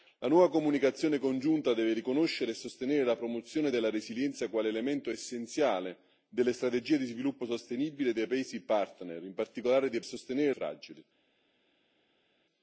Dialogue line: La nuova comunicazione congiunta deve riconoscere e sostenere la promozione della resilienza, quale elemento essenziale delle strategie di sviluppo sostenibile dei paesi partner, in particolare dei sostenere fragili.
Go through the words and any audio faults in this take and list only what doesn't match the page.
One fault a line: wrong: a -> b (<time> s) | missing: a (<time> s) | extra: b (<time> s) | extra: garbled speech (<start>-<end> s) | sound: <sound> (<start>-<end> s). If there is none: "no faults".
no faults